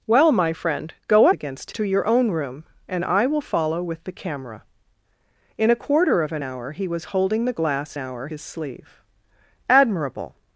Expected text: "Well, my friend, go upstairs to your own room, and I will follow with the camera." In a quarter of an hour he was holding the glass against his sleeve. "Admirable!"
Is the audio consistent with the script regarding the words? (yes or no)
no